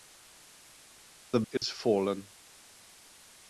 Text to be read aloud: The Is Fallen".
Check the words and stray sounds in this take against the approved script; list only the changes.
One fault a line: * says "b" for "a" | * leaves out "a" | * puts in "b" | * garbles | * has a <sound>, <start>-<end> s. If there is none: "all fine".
* has a dropout, 1.6-1.6 s